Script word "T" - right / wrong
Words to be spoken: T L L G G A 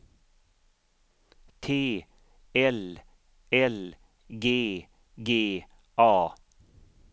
right